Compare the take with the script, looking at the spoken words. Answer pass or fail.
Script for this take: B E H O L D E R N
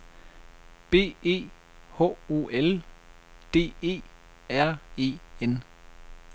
fail